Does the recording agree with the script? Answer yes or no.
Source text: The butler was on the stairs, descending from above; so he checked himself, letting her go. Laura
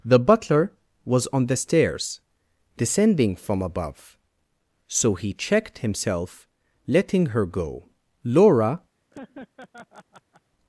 yes